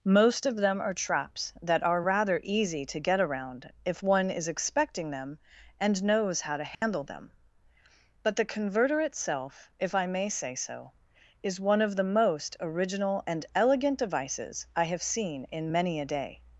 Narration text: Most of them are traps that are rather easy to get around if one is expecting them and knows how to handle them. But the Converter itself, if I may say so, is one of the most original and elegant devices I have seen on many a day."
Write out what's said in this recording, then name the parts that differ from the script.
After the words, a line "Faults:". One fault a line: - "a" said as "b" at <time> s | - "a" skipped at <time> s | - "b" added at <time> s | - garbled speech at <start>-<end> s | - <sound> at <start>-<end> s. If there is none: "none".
Most of them are traps that are rather easy to get around if one is expecting them and knows how to handle them. But the Converter itself, if I may say so, is one of the most original and elegant devices I have seen in many a day."
Faults:
- dropout at 6.7-6.8 s
- "on" said as "in" at 15.4 s